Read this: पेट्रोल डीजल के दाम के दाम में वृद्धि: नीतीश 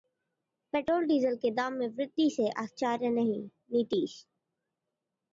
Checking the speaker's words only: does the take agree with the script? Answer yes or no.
no